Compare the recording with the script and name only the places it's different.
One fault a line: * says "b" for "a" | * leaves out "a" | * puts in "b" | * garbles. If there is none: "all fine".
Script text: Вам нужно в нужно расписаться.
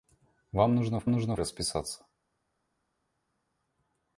all fine